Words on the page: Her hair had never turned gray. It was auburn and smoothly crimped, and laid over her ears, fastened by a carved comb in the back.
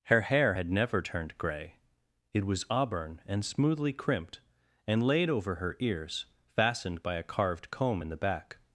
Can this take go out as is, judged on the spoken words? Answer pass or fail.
pass